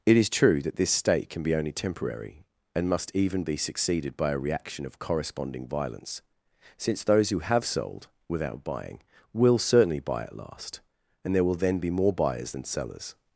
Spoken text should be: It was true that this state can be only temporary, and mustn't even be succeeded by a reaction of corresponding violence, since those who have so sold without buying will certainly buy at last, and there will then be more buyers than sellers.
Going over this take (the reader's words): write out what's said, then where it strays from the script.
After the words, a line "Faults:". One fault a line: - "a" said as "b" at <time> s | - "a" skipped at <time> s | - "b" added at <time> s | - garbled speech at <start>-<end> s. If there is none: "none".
It is true that this state can be only temporary, and must even be succeeded by a reaction of corresponding violence, since those who have sold without buying will certainly buy at last, and there will then be more buyers than sellers.
Faults:
- "was" said as "is" at 0.2 s
- "mustn't" said as "must" at 2.9 s
- "so" skipped at 7.6 s